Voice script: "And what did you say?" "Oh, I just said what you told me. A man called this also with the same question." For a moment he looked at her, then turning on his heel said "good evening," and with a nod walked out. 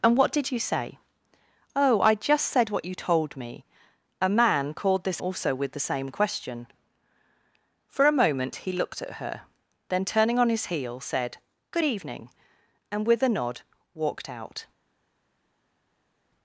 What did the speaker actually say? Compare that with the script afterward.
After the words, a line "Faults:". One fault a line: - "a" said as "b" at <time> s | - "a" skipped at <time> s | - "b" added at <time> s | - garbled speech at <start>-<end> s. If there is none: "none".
"And what did you say?" "Oh, I just said what you told me. A man called this also with the same question." For a moment he looked at her, then turning on his heel said "good evening," and with a nod walked out.
Faults:
none